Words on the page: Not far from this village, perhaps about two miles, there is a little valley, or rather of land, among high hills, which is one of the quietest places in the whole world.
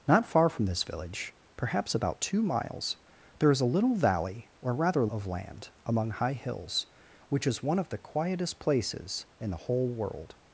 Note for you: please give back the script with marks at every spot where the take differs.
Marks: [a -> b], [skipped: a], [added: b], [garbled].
Not far from this village, perhaps about two miles, there is a little valley, or rather of land, among high hills, which is one of the quietest places in the whole world.